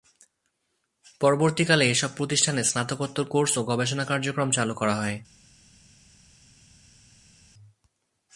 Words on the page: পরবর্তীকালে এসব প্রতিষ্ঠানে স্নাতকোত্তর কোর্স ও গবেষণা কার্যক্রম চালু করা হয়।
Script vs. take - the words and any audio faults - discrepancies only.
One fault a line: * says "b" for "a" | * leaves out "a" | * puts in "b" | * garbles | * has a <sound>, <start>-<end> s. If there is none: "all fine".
all fine